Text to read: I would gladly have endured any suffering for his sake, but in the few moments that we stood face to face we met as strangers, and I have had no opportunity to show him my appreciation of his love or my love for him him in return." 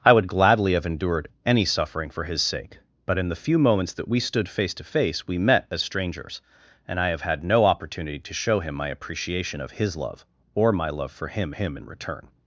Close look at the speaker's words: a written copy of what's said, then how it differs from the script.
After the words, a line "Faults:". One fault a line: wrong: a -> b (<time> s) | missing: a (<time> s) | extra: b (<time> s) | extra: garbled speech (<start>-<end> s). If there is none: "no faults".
I would gladly have endured any suffering for his sake, but in the few moments that we stood face to face we met as strangers, and I have had no opportunity to show him my appreciation of his love or my love for him him in return."
Faults:
no faults